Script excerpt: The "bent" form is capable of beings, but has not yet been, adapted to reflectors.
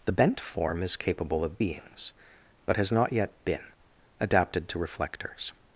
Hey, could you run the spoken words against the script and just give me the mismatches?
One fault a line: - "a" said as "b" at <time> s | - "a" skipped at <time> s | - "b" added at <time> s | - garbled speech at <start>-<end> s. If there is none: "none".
none